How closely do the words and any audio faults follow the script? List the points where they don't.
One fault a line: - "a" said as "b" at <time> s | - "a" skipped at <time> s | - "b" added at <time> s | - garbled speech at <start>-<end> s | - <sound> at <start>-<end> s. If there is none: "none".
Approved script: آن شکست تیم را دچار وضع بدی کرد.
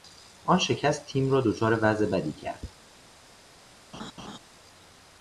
- laugh at 3.9-4.4 s